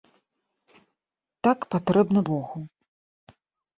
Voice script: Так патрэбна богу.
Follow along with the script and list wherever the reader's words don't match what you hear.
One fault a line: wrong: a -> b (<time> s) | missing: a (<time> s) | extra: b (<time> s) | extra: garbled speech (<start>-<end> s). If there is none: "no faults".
no faults